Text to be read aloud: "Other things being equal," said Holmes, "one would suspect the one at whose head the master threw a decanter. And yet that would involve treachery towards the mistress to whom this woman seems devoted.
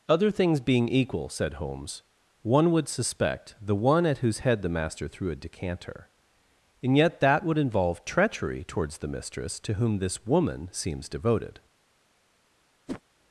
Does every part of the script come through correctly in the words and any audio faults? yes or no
no